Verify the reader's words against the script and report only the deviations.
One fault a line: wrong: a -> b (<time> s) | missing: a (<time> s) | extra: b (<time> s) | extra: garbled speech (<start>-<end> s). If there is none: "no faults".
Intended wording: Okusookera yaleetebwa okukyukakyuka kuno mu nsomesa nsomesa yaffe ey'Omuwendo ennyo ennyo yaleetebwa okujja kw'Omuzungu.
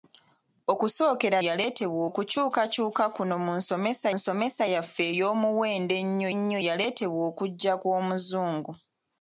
no faults